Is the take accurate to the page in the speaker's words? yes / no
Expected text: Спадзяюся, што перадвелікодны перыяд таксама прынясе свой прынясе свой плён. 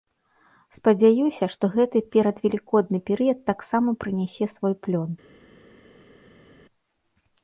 no